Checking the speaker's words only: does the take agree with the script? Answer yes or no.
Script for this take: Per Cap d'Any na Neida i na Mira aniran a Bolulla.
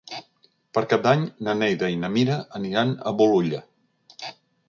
yes